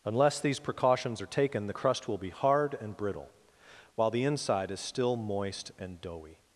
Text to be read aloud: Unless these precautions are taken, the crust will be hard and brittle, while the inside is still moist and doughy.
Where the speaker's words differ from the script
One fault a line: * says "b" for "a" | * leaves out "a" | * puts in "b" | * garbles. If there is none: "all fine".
all fine